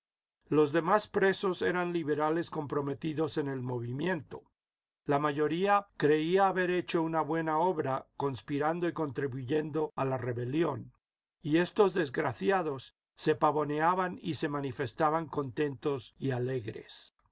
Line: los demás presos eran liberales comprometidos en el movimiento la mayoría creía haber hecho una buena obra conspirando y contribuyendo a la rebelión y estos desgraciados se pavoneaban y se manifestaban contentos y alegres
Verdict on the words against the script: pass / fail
pass